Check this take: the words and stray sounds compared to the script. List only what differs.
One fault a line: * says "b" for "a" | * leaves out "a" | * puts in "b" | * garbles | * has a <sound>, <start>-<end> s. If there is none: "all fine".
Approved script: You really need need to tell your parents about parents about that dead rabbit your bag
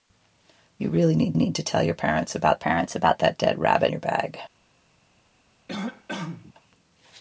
* has a cough, 5.7-6.5 s